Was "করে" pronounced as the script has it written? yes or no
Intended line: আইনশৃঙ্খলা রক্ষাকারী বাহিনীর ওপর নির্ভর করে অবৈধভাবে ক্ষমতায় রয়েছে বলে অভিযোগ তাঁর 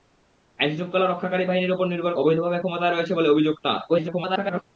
no